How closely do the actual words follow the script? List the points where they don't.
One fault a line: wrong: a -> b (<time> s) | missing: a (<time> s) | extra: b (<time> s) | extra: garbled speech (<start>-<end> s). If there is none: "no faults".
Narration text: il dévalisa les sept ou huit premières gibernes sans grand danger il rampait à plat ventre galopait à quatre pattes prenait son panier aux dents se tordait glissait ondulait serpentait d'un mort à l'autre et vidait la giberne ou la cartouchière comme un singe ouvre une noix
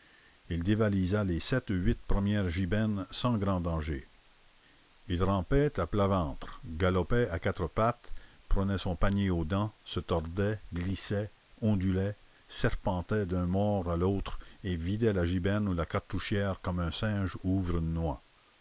no faults